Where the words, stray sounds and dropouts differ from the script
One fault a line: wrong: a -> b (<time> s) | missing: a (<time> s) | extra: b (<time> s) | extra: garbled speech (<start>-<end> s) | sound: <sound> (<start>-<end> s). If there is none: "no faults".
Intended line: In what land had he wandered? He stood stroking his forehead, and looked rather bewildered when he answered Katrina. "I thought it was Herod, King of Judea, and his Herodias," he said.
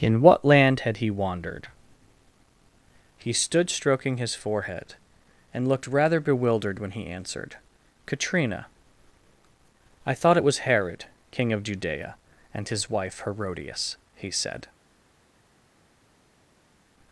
extra: wife (12.9 s)